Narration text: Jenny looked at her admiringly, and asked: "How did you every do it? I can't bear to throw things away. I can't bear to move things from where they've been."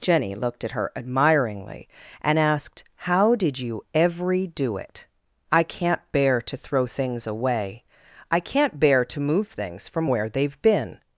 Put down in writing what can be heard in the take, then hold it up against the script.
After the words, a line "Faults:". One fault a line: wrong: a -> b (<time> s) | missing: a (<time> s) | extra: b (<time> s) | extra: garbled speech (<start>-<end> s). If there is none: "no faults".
Jenny looked at her admiringly, and asked: "How did you every do it? I can't bear to throw things away. I can't bear to move things from where they've been."
Faults:
no faults